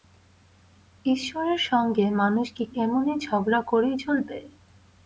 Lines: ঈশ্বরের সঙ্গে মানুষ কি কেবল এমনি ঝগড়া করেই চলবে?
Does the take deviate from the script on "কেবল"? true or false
true